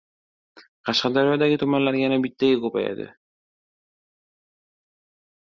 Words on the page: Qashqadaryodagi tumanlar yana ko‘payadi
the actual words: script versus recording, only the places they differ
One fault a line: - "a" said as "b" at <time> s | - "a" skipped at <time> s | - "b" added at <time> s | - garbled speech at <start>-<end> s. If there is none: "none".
- "bittaga" added at 2.3 s